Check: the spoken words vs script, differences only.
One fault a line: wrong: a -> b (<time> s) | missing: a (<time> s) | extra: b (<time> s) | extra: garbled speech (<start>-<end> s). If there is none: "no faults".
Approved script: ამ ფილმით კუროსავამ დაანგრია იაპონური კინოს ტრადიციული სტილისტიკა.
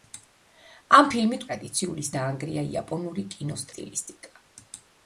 wrong: კუროსავამ -> ტრადიციული (1.5 s)
missing: ტრადიციული (3.7 s)